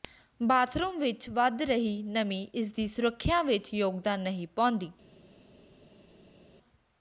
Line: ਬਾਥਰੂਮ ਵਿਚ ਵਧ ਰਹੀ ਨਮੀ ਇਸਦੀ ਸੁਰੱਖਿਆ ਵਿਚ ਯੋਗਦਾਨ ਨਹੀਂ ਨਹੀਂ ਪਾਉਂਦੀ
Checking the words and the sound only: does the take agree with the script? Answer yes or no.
no